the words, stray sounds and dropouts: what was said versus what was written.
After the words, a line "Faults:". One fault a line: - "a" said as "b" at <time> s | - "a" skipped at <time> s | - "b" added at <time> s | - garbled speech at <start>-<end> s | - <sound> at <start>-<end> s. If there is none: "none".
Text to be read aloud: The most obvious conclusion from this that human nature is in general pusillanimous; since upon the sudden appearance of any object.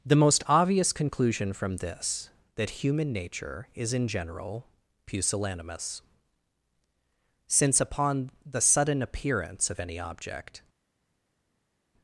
The most obvious conclusion from this that human nature is in general pusillanimous; since upon the sudden appearance of any object.
Faults:
none